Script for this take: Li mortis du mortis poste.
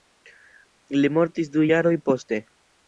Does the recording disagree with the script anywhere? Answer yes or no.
yes